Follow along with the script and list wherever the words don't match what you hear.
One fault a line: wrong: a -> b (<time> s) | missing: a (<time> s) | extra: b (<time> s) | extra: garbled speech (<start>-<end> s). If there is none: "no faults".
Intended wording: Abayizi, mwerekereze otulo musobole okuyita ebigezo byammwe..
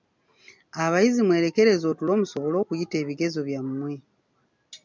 no faults